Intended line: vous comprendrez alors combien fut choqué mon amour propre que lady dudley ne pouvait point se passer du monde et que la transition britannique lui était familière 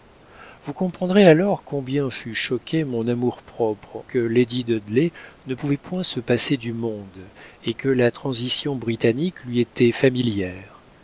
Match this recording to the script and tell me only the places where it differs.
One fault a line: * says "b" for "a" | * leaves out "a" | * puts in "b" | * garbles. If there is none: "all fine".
all fine